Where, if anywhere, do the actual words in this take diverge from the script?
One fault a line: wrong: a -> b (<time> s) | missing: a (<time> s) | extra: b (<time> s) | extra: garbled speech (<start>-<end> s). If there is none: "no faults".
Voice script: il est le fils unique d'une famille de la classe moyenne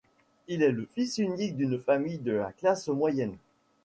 no faults